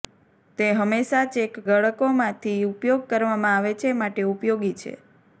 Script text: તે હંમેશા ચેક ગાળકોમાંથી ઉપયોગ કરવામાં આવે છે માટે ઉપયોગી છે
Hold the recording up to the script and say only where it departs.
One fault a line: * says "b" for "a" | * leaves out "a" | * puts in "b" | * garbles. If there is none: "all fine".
all fine